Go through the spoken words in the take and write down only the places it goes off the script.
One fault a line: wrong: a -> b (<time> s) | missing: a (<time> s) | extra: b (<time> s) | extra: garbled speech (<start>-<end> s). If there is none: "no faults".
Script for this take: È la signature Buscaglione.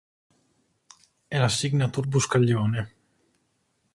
no faults